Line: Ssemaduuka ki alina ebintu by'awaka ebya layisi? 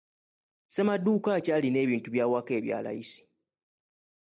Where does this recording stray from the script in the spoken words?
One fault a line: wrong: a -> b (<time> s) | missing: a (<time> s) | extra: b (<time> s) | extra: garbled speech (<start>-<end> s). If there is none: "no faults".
no faults